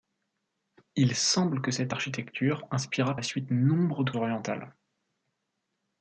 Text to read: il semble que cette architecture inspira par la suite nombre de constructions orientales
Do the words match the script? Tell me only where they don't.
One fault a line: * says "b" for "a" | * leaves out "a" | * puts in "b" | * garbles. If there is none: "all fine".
* leaves out "par"
* leaves out "constructions"